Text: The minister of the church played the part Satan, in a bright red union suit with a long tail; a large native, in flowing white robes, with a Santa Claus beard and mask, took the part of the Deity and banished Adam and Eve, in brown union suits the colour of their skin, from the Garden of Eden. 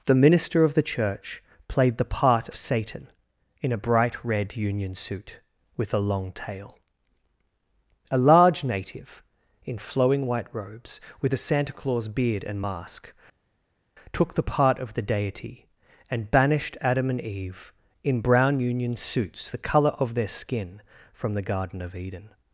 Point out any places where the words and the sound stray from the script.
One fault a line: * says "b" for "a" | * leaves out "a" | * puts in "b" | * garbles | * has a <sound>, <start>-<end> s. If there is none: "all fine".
all fine